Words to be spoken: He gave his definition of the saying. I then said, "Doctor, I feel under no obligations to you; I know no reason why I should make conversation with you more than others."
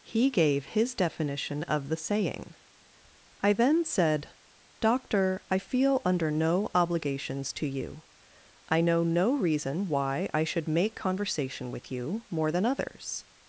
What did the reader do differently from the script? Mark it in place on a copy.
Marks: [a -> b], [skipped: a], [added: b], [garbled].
He gave his definition of the saying. I then said, "Doctor, I feel under no obligations to you; I know no reason why I should make conversation with you more than others."